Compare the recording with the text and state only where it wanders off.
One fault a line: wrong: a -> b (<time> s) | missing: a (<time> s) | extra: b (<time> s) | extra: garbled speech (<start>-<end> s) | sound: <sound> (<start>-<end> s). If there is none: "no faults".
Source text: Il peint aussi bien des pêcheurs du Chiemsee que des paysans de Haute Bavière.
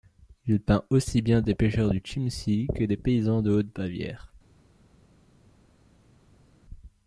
no faults